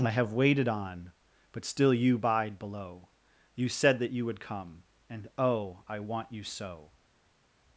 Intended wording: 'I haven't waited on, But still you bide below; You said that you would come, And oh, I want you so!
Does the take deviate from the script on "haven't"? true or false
true